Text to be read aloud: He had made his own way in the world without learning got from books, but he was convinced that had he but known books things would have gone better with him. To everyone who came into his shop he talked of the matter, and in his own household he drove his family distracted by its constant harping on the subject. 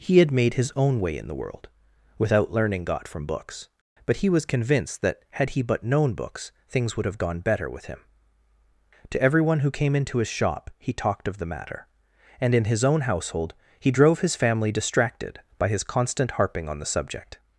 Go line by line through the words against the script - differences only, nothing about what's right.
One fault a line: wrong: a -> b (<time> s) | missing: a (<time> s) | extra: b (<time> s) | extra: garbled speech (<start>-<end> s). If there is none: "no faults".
wrong: its -> his (15.7 s)